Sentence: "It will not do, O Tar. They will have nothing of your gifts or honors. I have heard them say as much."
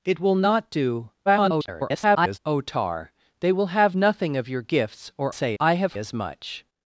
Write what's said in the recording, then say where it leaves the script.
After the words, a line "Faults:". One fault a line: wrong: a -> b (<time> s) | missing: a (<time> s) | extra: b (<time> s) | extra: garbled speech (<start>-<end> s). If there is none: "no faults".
"It will not do, [garbled] O Tar. They will have nothing of your gifts or say. I have as much."
Faults:
extra: garbled speech (1.3-2.4 s)
wrong: honors -> say (5.3 s)
missing: heard them say (5.9 s)